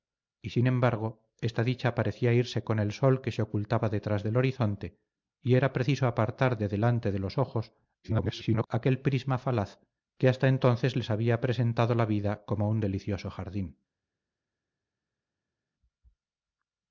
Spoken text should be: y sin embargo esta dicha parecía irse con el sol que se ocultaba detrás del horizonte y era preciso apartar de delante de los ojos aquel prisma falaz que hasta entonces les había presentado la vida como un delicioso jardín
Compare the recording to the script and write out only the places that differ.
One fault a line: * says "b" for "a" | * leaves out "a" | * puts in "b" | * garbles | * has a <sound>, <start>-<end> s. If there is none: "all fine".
* garbles